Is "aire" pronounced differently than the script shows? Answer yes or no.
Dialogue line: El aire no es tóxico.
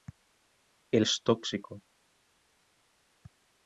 yes